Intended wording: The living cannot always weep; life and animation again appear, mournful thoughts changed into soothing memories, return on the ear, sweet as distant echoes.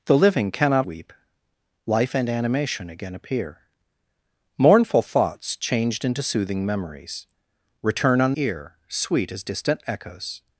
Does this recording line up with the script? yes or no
no